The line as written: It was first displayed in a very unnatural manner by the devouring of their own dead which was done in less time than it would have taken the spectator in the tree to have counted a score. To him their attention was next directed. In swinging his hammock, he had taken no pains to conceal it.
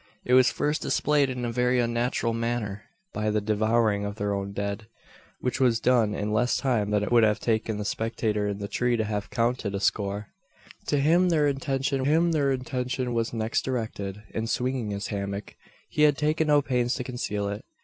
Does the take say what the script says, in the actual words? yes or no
no